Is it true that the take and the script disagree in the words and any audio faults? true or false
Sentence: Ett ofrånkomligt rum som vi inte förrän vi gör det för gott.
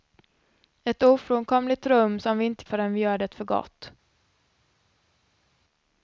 false